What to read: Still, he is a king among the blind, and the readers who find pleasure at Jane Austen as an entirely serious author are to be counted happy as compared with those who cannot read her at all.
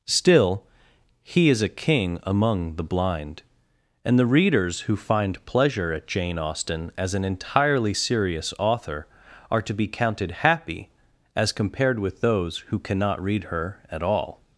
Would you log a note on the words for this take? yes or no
no